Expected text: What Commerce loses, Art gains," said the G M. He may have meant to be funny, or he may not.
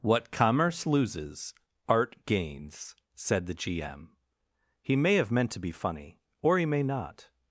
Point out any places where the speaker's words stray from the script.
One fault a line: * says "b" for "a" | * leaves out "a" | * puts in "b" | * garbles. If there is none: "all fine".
all fine